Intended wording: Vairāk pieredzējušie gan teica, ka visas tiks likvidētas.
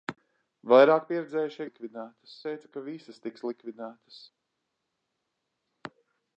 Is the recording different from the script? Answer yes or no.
yes